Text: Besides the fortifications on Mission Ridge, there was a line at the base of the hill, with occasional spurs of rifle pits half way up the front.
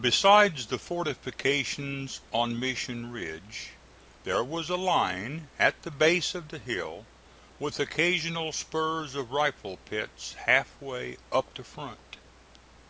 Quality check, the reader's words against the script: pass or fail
pass